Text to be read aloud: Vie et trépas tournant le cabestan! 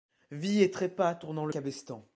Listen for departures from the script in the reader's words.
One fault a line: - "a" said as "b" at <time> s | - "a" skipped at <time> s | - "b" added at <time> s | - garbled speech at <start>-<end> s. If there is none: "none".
none